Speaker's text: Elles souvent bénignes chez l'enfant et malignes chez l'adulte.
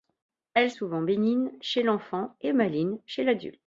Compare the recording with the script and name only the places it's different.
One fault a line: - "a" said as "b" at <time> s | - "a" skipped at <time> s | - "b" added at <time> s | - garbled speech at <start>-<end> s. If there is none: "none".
none